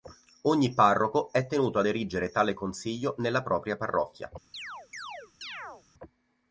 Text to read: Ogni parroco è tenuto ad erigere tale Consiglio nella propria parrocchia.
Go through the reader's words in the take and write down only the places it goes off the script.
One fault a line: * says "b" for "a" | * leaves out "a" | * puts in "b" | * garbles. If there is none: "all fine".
all fine